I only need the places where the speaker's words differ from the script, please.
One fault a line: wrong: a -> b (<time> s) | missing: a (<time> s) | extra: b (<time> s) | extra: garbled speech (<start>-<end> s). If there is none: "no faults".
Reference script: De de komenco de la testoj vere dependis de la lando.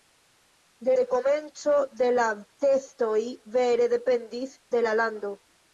no faults